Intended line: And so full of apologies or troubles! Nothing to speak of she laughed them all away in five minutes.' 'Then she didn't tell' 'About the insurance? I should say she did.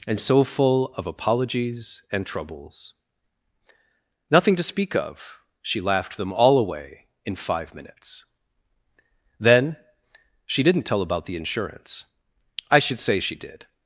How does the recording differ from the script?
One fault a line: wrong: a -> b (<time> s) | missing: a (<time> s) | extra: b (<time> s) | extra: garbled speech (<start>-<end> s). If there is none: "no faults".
wrong: or -> and (2.1 s)